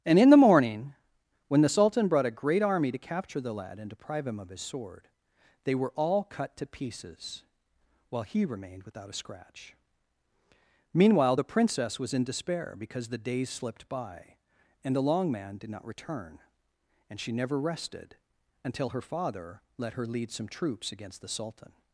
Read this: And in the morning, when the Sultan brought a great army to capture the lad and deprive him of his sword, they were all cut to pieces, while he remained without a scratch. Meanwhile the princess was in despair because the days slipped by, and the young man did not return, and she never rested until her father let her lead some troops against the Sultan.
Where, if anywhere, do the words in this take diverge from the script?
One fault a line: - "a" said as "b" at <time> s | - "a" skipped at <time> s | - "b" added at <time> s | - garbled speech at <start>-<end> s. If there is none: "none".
- "young" said as "long" at 15.0 s